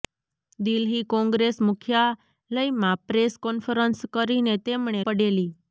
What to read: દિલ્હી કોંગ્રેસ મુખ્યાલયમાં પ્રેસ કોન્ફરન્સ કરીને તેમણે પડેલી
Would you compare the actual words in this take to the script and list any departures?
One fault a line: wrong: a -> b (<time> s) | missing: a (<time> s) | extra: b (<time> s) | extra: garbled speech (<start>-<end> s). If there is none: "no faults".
no faults